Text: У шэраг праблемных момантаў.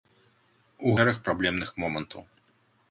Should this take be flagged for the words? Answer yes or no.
no